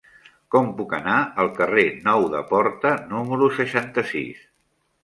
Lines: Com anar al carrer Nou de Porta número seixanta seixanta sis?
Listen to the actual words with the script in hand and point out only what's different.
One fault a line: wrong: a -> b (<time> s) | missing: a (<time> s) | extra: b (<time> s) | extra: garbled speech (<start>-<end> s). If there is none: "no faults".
extra: puc (0.8 s)
missing: seixanta (4.1 s)